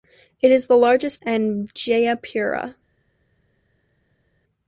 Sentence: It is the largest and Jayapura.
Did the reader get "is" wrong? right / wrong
right